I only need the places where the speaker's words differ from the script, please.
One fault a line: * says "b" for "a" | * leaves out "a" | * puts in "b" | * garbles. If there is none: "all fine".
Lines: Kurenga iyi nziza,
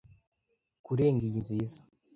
all fine